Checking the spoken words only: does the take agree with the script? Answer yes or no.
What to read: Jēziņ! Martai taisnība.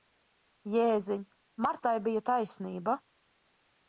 no